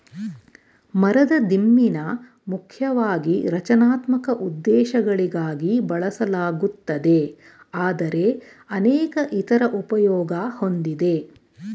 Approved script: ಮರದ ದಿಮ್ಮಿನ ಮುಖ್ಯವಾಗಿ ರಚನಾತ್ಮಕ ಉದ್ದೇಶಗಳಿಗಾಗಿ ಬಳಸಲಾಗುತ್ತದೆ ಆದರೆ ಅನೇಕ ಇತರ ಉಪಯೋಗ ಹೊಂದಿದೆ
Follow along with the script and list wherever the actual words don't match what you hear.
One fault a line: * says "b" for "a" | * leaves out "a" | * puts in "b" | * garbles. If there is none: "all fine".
all fine